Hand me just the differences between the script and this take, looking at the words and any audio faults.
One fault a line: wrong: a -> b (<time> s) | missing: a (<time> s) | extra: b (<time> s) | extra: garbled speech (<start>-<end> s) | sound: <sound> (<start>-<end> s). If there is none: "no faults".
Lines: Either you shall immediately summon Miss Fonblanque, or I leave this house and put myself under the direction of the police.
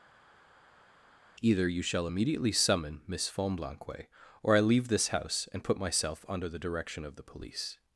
no faults